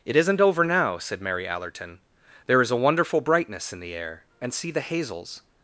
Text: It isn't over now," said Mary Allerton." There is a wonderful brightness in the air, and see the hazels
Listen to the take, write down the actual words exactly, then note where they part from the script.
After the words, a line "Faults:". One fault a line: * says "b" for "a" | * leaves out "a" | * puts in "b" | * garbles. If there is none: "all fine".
It isn't over now," said Mary Allerton." There is a wonderful brightness in the air, and see the hazels
Faults:
all fine